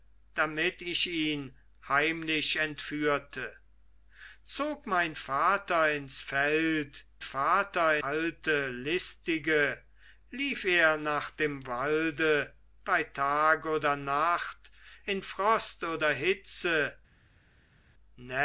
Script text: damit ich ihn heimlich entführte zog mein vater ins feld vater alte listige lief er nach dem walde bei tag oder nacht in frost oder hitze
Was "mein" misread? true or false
false